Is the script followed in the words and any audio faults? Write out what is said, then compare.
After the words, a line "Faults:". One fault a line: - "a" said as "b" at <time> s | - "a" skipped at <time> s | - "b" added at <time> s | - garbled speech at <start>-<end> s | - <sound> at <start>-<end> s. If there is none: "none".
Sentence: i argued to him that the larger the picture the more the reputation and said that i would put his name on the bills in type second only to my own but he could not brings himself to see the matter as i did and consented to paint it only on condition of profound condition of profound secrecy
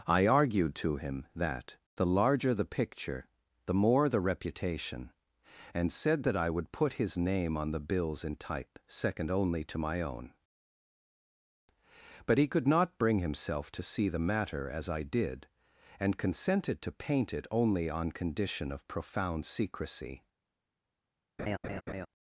i argued to him that the larger the picture the more the reputation and said that i would put his name on the bills in type second only to my own but he could not bring himself to see the matter as i did and consented to paint it only on condition of profound secrecy
Faults:
- "brings" said as "bring" at 13.0 s
- "condition of profound" skipped at 19.4 s
- laugh at 21.4-22.1 s